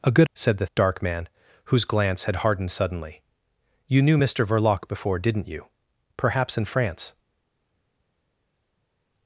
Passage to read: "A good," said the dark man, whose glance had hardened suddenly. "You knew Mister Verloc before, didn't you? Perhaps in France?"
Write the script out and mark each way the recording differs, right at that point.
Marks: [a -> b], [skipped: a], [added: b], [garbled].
"A good," said the dark man, whose glance had hardened suddenly. "You knew Mister Verloc before, didn't you? Perhaps in France?"